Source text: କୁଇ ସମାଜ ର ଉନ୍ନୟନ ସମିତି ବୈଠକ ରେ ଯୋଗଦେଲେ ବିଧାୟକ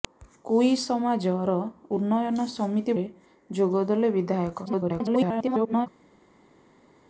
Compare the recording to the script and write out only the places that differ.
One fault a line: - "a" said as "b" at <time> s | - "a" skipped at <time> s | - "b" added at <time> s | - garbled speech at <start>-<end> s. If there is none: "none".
- "ବୈଠକ" skipped at 3.0 s
- garbled speech at 4.7-5.9 s